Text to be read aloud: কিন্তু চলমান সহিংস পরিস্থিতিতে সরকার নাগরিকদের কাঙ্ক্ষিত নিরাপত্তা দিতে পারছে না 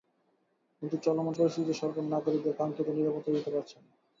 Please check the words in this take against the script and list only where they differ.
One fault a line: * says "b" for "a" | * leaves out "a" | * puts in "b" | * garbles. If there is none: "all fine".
* leaves out "সহিংস"